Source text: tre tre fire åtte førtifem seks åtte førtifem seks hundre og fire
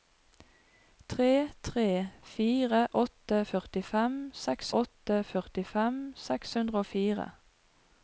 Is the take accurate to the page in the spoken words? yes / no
yes